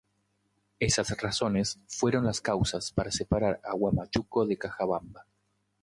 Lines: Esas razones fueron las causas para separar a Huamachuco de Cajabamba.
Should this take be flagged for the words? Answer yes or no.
no